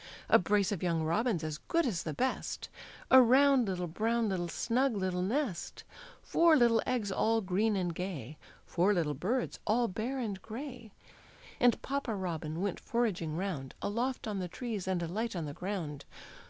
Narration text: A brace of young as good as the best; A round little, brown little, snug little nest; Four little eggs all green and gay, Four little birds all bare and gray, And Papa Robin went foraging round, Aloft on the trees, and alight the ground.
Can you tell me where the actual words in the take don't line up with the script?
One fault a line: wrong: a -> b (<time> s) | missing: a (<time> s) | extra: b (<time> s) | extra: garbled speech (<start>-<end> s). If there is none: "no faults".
extra: robins (1.0 s)
extra: on (15.3 s)